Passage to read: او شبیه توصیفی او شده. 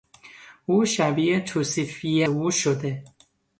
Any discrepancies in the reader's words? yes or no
no